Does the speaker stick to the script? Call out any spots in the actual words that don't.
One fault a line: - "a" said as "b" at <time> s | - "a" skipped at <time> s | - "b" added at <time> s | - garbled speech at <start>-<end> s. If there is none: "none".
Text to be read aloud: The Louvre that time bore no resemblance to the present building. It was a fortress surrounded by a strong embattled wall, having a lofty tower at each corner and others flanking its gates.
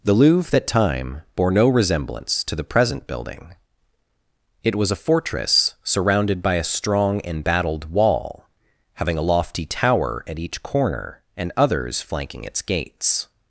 none